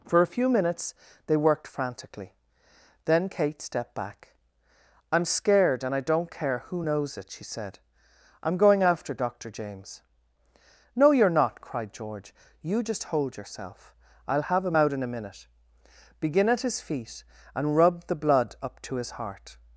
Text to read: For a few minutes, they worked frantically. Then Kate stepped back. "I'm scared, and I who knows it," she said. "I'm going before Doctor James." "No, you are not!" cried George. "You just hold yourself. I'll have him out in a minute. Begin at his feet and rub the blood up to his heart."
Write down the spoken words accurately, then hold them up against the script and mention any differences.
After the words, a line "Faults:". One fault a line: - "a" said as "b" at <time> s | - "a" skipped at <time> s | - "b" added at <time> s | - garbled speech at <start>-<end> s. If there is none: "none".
For a few minutes, they worked frantically. Then Kate stepped back. "I'm scared, and I don't care who knows it," she said. "I'm going after Doctor James." "No, you are not!" cried George. "You just hold yourself. I'll have him out in a minute. Begin at his feet and rub the blood up to his heart."
Faults:
- "don't care" added at 6.0 s
- "before" said as "after" at 8.8 s